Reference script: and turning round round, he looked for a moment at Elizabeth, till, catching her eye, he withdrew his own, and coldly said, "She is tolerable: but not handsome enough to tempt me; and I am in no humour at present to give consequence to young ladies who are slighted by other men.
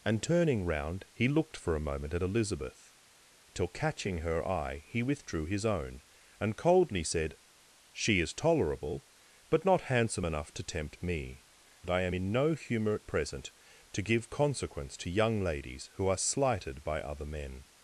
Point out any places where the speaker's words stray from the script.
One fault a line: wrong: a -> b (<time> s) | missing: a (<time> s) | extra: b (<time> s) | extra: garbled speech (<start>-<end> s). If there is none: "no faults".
missing: round (1.1 s)